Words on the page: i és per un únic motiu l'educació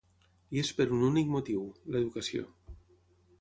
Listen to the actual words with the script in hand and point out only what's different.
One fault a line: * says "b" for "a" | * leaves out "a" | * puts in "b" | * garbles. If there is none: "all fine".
all fine